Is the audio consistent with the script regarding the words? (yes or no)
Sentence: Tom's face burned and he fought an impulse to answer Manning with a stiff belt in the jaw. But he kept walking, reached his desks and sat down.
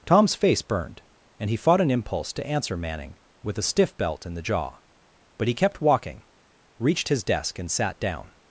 no